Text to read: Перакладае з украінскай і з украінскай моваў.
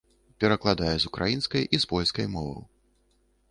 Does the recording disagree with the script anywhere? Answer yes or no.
yes